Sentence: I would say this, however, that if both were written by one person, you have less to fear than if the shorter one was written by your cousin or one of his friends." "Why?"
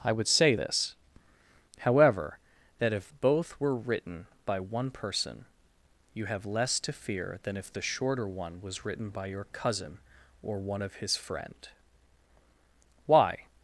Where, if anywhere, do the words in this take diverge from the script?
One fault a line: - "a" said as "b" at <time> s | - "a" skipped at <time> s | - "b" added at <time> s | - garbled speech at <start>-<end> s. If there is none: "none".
- "friends" said as "friend" at 11.1 s